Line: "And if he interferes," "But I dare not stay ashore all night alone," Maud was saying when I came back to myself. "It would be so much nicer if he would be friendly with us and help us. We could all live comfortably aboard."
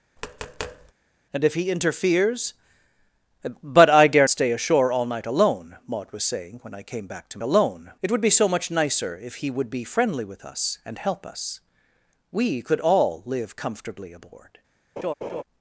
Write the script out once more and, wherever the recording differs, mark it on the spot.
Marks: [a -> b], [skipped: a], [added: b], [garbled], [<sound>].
[tap] "And if he interferes," "But I dare [skipped: not] stay ashore all night alone," Maud was saying when I came back to [myself. -> alone] "It would be so much nicer if he would be friendly with us and help us. We could all live comfortably aboard." [laugh]